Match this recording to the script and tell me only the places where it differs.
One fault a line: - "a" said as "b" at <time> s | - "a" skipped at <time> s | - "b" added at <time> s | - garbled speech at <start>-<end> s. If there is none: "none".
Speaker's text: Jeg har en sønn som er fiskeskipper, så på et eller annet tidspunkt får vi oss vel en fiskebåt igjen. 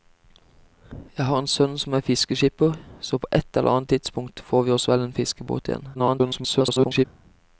- garbled speech at 5.9-7.1 s